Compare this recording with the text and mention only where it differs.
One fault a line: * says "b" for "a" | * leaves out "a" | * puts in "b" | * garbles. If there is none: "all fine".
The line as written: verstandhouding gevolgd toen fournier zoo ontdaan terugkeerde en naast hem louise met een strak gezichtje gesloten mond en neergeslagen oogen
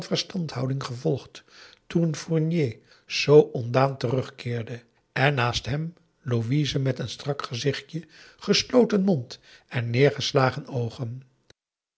all fine